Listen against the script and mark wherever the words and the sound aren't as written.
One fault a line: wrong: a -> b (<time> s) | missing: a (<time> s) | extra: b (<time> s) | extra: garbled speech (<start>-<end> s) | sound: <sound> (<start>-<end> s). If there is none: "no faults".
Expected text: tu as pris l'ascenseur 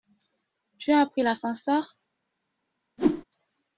sound: whoosh (3.0-3.2 s)